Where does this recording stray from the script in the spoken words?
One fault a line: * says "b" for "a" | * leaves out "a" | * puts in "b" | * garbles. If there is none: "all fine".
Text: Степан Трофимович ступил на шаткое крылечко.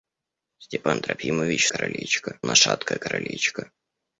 * says "крылечко" for "ступил"